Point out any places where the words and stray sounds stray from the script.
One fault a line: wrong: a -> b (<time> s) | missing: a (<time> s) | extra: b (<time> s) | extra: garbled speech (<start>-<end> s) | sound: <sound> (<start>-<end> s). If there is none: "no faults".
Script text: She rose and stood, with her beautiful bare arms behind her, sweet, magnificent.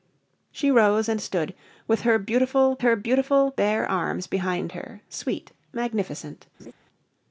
extra: her beautiful (2.8 s)
sound: laugh (6.6-6.7 s)